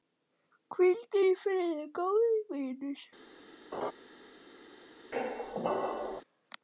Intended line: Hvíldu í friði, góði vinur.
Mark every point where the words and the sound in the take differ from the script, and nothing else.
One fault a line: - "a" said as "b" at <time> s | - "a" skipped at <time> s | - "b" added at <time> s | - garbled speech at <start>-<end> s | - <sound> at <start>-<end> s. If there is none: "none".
- laugh at 3.7-3.9 s
- squeak at 5.1-6.2 s